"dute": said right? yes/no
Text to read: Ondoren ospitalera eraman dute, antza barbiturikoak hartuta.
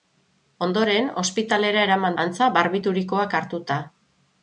no